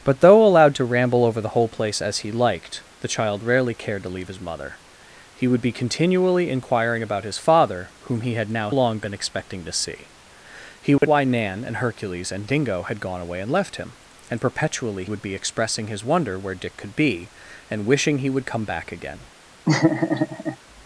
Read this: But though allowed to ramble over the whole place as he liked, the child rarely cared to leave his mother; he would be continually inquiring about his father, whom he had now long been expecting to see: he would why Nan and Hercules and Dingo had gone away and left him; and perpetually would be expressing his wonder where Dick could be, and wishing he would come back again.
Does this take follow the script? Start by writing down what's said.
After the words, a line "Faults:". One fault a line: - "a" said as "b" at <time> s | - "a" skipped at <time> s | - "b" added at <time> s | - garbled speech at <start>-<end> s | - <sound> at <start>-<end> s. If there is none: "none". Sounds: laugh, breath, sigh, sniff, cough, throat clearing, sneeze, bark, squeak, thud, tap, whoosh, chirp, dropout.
But though allowed to ramble over the whole place as he liked, the child rarely cared to leave his mother; he would be continually inquiring about his father, whom he had now long been expecting to see: he would why Nan and Hercules and Dingo had gone away and left him; and perpetually would be expressing his wonder where Dick could be, and wishing he would come back again.
Faults:
- dropout at 11.0-11.0 s
- laugh at 19.6-20.6 s